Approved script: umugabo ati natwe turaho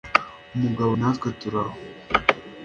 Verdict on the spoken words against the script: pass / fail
fail